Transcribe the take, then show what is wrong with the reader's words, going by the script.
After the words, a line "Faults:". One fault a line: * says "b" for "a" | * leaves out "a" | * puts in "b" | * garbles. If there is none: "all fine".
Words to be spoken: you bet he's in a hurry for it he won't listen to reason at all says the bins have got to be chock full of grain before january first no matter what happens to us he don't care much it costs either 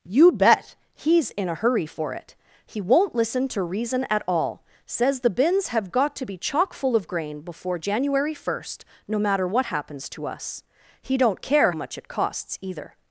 you bet he's in a hurry for it he won't listen to reason at all says the bins have got to be chock full of grain before january first no matter what happens to us he don't care much it costs either
Faults:
all fine